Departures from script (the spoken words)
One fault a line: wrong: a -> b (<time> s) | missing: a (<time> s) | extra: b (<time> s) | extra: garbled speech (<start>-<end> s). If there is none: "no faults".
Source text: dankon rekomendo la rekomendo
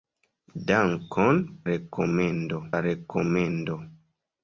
no faults